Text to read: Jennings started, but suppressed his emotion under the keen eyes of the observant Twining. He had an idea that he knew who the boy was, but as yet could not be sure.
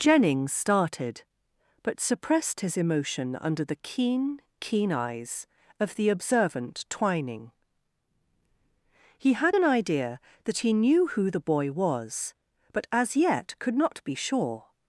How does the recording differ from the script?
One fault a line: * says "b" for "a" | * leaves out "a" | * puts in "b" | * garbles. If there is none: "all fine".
* puts in "keen"